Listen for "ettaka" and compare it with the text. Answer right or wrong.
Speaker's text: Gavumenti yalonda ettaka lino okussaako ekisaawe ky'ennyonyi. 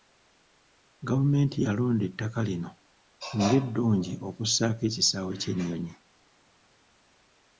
right